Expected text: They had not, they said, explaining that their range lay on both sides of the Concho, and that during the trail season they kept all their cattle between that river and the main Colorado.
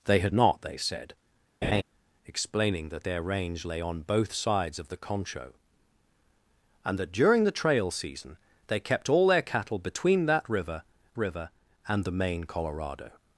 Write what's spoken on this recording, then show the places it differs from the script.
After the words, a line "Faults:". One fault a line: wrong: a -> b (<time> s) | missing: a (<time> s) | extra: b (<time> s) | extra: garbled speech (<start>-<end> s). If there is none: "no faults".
They had not, they said, explaining that their range lay on both sides of the Concho, and that during the trail season they kept all their cattle between that river river and the main Colorado.
Faults:
extra: river (11.2 s)